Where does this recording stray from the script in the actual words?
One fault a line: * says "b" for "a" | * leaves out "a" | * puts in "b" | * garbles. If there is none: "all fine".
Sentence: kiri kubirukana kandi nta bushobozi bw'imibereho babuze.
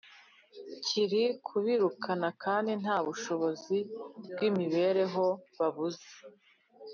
all fine